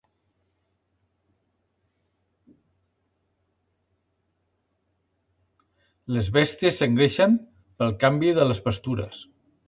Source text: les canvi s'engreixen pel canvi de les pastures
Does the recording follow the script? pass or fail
fail